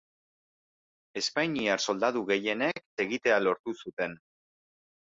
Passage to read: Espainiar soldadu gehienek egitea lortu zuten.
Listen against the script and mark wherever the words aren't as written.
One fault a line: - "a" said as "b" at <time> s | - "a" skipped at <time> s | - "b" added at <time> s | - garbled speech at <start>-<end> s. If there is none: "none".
none